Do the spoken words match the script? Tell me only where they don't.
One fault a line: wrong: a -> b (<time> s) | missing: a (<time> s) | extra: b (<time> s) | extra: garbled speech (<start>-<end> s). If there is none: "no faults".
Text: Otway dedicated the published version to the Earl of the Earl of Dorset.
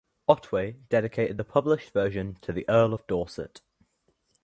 missing: the Earl of (3.1 s)